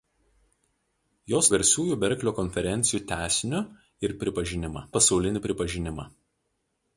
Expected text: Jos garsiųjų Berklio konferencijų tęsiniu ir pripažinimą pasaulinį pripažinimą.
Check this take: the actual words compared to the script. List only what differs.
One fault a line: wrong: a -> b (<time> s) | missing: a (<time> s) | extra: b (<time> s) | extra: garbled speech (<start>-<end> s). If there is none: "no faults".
no faults